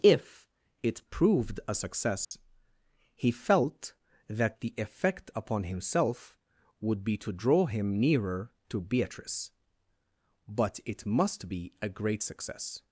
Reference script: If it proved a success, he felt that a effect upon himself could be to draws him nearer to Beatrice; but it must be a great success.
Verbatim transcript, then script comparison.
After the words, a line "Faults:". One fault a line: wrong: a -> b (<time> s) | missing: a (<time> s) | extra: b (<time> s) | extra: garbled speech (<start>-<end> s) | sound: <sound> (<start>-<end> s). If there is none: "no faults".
If it proved a success, he felt that the effect upon himself would be to draw him nearer to Beatrice; but it must be a great success.
Faults:
sound: dropout (2.2-2.3 s)
wrong: a -> the (4.6 s)
wrong: could -> would (6.8 s)
wrong: draws -> draw (7.3 s)